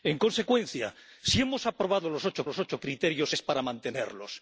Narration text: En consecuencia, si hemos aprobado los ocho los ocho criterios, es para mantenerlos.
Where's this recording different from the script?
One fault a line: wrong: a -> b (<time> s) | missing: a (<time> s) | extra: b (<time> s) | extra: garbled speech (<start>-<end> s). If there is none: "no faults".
no faults